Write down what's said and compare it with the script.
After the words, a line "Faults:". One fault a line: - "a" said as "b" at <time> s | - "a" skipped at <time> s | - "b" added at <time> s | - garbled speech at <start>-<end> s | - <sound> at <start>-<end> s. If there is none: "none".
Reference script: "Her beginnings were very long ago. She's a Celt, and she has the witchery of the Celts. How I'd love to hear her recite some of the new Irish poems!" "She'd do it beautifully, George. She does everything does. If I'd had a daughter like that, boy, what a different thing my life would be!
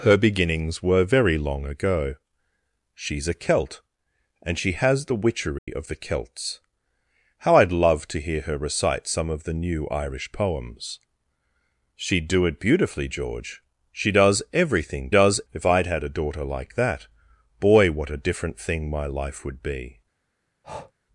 "Her beginnings were very long ago. She's a Celt, and she has the witchery of the Celts. How I'd love to hear her recite some of the new Irish poems!" "She'd do it beautifully, George. She does everything does. If I'd had a daughter like that, boy, what a different thing my life would be!
Faults:
- dropout at 5.6-5.7 s
- breath at 20.6-20.9 s